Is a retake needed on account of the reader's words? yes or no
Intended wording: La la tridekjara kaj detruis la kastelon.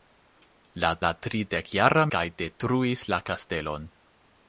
no